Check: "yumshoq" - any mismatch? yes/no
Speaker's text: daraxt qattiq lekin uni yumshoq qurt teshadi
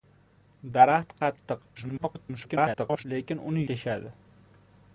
yes